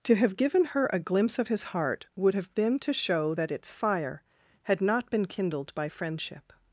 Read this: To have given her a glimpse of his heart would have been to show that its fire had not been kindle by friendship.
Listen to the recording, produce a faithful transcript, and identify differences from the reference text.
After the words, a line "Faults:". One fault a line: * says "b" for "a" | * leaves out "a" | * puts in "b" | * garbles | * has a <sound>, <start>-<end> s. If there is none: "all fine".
To have given her a glimpse of his heart would have been to show that its fire had not been kindled by friendship.
Faults:
* says "kindled" for "kindle"